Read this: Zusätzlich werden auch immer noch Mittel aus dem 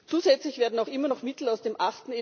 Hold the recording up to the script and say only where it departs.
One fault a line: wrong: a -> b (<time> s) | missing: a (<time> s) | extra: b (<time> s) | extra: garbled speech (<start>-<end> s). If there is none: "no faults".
no faults